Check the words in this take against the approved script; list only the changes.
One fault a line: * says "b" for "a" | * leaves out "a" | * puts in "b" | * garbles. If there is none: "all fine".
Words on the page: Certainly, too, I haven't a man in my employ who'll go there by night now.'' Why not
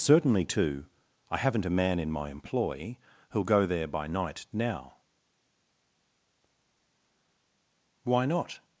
all fine